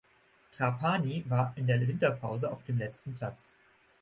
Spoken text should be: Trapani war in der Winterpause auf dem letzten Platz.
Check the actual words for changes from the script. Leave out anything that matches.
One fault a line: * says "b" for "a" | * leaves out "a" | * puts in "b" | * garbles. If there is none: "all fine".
all fine